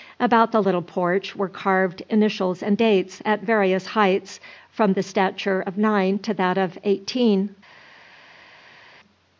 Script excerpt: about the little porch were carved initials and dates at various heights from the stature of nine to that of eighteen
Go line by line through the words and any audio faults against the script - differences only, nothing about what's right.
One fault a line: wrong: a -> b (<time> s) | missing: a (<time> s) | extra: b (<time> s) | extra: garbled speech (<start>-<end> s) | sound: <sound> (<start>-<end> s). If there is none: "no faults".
no faults